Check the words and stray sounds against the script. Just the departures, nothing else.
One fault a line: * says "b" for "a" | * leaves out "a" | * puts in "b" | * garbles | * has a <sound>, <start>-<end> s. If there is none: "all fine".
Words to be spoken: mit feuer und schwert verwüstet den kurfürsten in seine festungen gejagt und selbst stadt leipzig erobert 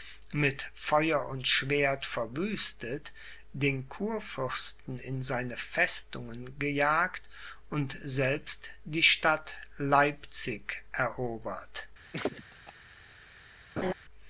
* puts in "die"
* has a laugh, 12.1-12.7 s
* has a laugh, 13.8-13.9 s